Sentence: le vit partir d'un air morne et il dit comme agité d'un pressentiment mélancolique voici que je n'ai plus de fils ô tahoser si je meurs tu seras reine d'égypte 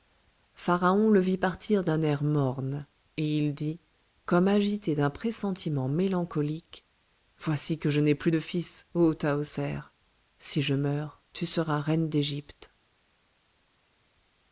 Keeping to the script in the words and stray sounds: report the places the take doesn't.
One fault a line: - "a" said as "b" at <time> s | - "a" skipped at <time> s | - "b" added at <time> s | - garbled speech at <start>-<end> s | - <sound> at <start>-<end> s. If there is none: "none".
none